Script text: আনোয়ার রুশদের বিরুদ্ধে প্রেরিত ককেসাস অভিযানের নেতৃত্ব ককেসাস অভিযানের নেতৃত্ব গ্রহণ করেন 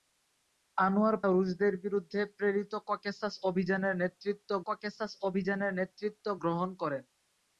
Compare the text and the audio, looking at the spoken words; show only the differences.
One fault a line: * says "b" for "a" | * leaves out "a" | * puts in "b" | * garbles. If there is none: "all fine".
all fine